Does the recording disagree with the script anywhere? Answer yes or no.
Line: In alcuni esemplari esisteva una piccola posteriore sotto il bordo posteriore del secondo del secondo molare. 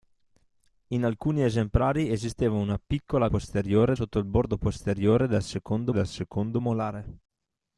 no